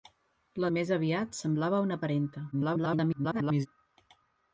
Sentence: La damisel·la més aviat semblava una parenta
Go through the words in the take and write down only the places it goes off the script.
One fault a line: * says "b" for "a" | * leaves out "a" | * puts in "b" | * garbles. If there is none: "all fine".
* leaves out "damisel·la"
* garbles